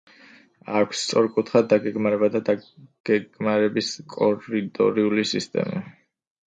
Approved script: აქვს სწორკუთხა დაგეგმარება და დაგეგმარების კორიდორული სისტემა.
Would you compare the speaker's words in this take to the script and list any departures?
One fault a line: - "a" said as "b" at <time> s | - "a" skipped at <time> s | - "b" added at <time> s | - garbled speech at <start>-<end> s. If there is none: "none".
none